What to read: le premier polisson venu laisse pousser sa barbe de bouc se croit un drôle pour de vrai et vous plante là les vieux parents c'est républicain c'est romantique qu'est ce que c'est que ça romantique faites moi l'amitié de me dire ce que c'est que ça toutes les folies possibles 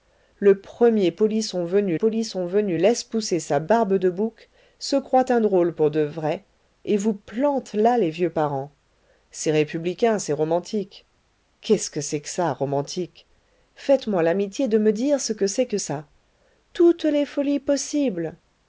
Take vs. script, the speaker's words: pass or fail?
fail